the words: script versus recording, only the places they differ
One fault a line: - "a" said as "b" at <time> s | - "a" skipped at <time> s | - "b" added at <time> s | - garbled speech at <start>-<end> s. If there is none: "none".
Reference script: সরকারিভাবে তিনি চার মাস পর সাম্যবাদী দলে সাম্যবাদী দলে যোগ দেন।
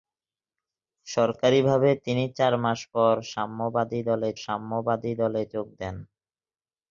none